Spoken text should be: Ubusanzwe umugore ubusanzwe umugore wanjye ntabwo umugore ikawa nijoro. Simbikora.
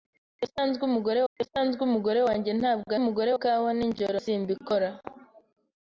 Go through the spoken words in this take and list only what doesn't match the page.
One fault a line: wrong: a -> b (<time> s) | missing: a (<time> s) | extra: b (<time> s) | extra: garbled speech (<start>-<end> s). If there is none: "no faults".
no faults